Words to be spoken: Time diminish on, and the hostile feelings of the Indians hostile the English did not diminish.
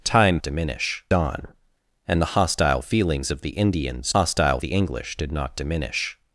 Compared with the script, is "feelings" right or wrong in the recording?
right